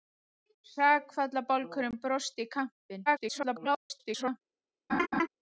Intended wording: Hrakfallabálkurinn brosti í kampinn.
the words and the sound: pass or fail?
fail